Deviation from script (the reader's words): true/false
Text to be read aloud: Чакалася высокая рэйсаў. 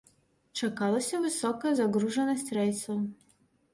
true